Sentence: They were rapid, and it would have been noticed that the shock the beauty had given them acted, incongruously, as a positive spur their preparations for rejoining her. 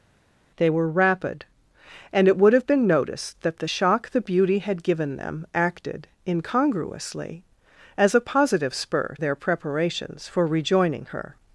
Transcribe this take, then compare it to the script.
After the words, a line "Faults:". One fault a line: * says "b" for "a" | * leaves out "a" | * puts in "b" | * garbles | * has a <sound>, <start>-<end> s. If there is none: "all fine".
They were rapid, and it would have been noticed that the shock the beauty had given them acted, incongruously, as a positive spur their preparations for rejoining her.
Faults:
all fine